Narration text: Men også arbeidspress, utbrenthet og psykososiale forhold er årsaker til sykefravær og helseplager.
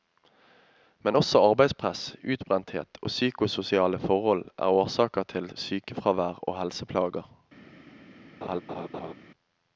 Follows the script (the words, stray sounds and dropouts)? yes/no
no